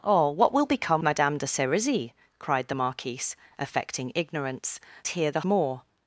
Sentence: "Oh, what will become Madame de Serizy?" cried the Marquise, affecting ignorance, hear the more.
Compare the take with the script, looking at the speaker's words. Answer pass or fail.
pass